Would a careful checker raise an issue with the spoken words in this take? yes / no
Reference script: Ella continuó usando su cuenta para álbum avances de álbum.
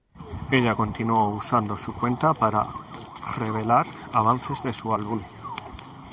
yes